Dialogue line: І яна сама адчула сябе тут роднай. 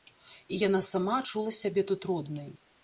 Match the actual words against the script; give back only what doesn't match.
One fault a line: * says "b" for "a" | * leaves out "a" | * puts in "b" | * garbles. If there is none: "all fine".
all fine